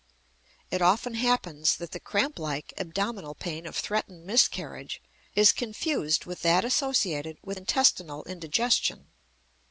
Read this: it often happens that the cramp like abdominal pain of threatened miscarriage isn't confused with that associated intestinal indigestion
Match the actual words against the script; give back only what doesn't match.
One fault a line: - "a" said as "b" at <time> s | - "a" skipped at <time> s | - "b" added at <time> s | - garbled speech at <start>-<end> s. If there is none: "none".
- "isn't" said as "is" at 5.3 s
- "with" added at 7.4 s